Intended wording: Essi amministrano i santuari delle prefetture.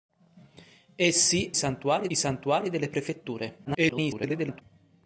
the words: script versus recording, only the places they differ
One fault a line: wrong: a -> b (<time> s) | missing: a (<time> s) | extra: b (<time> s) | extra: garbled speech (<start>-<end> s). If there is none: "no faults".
wrong: amministrano -> santuari (1.5 s)
extra: garbled speech (3.6-4.6 s)